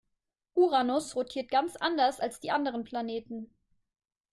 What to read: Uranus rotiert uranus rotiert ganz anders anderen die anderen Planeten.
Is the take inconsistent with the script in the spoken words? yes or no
yes